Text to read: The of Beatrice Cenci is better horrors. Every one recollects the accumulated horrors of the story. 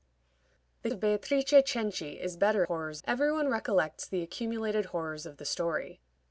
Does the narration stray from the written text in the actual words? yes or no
no